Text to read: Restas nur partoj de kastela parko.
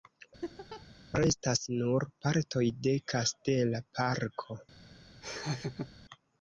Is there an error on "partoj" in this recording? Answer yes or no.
no